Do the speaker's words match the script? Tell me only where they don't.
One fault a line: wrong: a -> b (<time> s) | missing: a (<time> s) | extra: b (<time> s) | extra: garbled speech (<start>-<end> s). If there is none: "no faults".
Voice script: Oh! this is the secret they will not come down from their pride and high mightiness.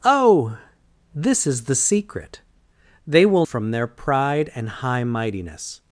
missing: not come down (3.5 s)